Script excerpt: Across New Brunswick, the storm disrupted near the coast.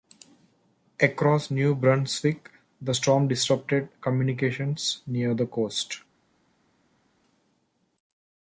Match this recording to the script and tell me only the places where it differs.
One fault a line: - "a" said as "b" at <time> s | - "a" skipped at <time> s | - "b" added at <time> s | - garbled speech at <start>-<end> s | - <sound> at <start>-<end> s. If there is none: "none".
- "communications" added at 4.0 s